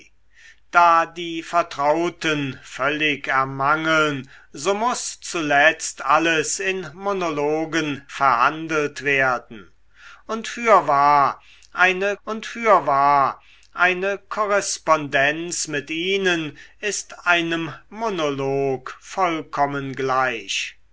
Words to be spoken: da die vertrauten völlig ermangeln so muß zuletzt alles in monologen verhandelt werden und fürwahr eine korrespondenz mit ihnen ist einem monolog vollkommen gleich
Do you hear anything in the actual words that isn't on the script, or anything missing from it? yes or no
yes